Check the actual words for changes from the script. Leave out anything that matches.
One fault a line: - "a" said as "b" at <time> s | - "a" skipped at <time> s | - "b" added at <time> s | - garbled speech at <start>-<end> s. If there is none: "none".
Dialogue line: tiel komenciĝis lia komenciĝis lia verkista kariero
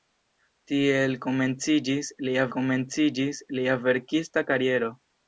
none